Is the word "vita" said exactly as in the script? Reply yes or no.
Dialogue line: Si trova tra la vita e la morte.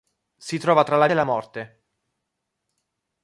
no